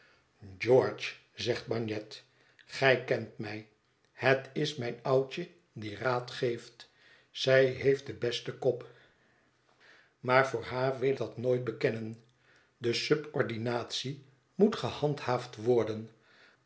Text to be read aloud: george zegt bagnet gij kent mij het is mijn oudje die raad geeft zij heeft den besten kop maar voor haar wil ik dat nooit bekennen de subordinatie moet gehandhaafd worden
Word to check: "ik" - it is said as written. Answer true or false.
false